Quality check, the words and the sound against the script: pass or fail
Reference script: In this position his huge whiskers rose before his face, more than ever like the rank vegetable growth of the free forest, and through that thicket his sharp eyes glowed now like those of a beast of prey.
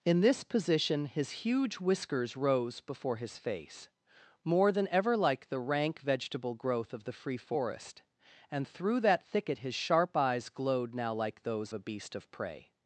fail